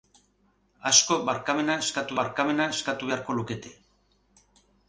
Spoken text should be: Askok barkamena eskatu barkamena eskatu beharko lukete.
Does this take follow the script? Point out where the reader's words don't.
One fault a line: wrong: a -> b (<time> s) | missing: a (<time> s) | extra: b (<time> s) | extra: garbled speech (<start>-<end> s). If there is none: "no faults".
no faults